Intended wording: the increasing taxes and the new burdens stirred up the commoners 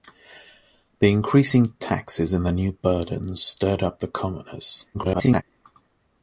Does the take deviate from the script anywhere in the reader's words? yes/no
yes